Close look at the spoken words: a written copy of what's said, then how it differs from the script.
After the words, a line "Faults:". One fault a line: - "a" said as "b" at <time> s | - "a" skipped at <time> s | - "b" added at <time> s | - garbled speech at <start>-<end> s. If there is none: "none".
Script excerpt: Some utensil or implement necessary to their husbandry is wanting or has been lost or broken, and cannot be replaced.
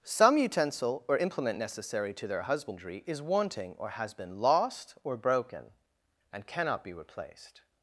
Some utensil or implement necessary to their husbandry is wanting or has been lost or broken, and cannot be replaced.
Faults:
none